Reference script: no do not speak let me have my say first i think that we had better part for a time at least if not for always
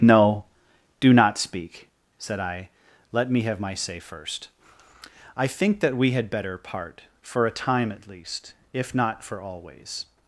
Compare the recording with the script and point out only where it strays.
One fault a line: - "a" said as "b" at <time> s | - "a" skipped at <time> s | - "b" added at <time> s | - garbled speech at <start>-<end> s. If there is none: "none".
- "said i" added at 2.2 s